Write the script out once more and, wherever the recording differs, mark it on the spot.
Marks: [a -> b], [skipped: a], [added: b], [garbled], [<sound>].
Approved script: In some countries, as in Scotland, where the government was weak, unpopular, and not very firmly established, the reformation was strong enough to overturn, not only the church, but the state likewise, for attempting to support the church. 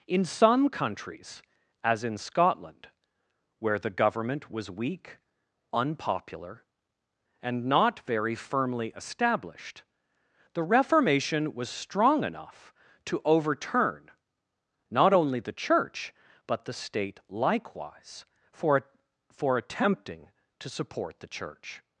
In some countries, as in Scotland, where the government was weak, unpopular, and not very firmly established, the reformation was strong enough to overturn, not only the church, but the state likewise, for [added: for] attempting to support the church.